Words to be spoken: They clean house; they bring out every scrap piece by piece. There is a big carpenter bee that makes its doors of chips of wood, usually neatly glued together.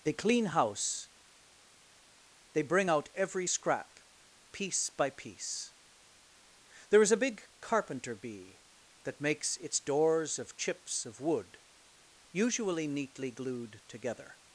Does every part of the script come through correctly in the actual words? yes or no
yes